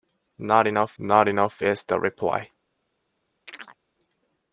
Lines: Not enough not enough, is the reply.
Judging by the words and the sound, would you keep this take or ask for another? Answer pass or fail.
fail